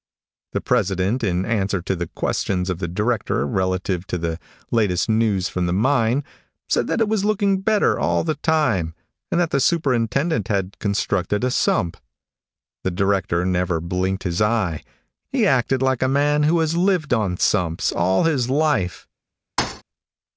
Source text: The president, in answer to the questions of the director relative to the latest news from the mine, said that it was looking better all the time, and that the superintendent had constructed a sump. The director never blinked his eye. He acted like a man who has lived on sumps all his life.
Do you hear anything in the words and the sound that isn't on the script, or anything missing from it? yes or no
yes